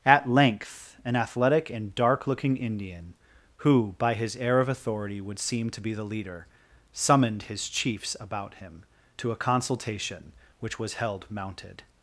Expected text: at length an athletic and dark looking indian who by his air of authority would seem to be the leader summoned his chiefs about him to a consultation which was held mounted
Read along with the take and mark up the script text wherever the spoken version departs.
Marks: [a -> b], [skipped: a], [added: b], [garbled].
at length an athletic and dark looking indian who by his air of authority would seem to be the leader summoned his chiefs about him to a consultation which was held mounted